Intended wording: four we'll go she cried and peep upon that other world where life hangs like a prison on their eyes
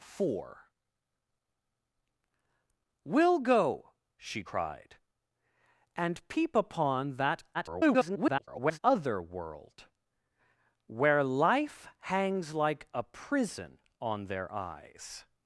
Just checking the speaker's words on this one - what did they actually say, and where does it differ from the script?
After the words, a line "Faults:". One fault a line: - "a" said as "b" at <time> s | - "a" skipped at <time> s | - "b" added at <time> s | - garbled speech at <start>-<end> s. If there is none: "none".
four we'll go she cried and peep upon that [garbled] other world where life hangs like a prison on their eyes
Faults:
- garbled speech at 7.5-8.8 s